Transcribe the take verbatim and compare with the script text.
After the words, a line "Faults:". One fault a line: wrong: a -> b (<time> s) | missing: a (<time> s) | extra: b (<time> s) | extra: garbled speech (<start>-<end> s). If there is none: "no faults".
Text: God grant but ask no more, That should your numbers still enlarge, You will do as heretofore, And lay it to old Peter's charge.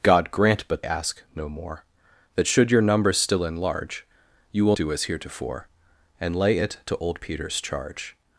God grant but ask no more, That should your numbers still enlarge, You will do as heretofore, And lay it to old Peter's charge.
Faults:
no faults